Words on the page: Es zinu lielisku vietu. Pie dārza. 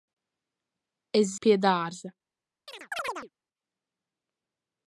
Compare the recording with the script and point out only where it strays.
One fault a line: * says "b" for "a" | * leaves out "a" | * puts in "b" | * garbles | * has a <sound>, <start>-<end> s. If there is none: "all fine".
* leaves out "zinu lielisku vietu"
* has a chirp, 2.7-3.3 s